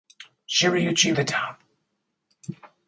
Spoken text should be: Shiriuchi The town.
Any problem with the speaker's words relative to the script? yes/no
no